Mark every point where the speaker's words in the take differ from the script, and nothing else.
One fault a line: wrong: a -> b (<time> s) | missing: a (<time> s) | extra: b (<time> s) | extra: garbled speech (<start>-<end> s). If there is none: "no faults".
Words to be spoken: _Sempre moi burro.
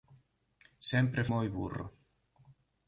no faults